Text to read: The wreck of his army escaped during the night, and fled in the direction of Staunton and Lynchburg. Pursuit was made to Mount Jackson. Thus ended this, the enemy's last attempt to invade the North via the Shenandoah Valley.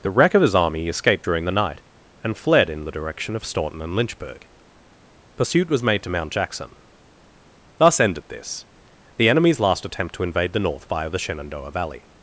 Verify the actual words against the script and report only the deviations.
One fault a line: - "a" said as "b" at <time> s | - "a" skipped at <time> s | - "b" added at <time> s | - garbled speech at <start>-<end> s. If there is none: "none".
none